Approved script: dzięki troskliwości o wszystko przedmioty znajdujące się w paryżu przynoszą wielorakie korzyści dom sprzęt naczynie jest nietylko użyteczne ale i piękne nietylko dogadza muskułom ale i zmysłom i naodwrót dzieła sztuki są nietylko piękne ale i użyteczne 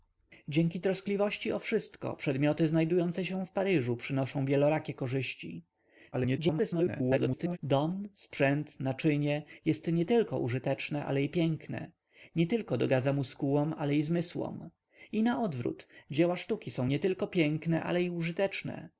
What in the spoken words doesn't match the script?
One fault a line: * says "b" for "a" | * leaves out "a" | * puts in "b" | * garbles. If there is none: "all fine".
* garbles